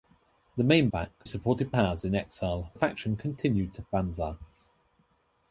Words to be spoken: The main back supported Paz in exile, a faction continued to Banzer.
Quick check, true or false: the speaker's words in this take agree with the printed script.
true